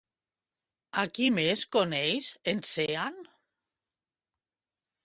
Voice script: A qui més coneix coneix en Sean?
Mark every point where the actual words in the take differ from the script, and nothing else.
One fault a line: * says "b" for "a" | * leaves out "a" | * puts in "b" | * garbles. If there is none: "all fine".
* leaves out "coneix"